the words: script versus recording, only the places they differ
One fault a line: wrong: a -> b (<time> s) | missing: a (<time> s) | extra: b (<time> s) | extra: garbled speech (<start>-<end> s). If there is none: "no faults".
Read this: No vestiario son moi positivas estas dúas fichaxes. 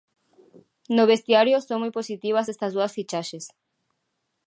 no faults